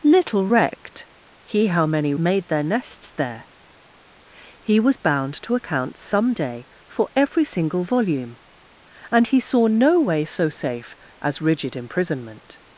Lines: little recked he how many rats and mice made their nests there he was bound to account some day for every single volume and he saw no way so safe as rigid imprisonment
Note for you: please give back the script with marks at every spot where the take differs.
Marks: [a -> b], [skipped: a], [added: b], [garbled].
little recked he how many [skipped: rats and mice] made their nests there he was bound to account some day for every single volume and he saw no way so safe as rigid imprisonment